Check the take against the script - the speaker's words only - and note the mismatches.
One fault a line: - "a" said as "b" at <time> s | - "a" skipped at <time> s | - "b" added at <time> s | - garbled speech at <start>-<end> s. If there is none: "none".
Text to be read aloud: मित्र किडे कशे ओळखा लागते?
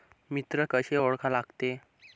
- "किडे" skipped at 0.7 s